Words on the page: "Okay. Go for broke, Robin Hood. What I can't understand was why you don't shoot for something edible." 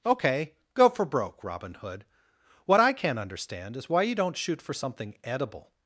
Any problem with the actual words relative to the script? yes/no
yes